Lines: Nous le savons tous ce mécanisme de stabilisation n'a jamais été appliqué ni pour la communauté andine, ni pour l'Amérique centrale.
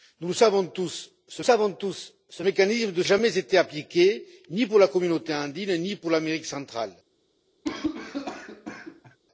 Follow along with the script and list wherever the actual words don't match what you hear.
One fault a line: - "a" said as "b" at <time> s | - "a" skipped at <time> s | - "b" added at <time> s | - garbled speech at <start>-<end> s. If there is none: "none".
- "savons tous ce" added at 1.4 s
- "stabilisation n'a" skipped at 3.0 s